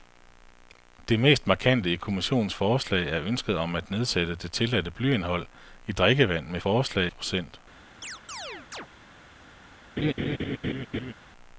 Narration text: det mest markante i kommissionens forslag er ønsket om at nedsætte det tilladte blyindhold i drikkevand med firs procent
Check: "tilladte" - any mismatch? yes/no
no